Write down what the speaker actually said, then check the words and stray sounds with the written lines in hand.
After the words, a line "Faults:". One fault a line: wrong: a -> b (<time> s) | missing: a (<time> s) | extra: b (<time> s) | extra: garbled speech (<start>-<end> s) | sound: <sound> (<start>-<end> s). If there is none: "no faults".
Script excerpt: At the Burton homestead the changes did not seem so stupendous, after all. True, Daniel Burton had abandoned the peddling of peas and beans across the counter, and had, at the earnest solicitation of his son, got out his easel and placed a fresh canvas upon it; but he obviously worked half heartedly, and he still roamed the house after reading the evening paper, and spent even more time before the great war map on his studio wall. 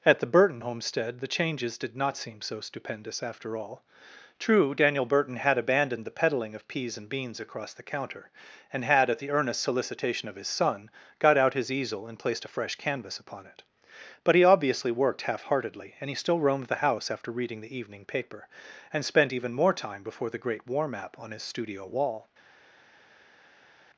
At the Burton homestead the changes did not seem so stupendous, after all. True, Daniel Burton had abandoned the peddling of peas and beans across the counter, and had, at the earnest solicitation of his son, got out his easel and placed a fresh canvas upon it; but he obviously worked half heartedly, and he still roamed the house after reading the evening paper, and spent even more time before the great war map on his studio wall.
Faults:
no faults